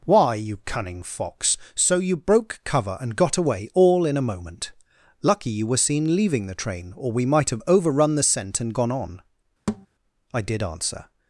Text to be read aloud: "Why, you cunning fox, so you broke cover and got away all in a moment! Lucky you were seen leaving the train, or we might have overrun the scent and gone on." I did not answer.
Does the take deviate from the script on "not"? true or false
true